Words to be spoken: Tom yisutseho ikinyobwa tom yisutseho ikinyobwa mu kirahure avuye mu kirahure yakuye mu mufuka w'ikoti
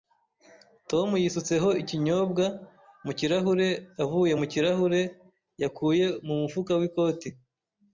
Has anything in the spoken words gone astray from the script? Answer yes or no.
yes